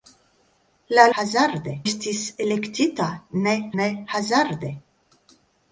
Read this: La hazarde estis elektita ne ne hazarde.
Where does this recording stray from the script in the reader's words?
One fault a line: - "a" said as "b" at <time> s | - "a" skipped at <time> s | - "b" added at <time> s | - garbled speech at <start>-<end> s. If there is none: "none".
none